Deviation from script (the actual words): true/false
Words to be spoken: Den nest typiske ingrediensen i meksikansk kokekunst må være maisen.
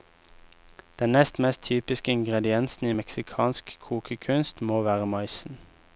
true